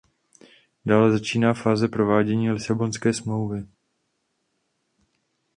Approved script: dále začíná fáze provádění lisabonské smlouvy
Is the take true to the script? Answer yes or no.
yes